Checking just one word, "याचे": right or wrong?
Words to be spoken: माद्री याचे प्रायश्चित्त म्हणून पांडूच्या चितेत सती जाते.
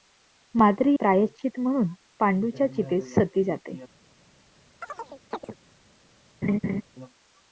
wrong